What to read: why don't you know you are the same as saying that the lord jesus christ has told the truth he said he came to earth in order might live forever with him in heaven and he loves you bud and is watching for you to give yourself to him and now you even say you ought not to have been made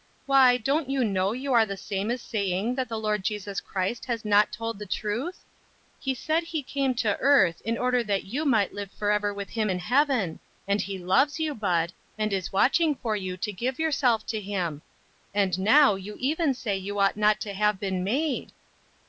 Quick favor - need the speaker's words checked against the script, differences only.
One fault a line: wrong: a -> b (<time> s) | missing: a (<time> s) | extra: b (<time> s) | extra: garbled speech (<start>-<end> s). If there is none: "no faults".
extra: not (4.2 s)
extra: that you (8.1 s)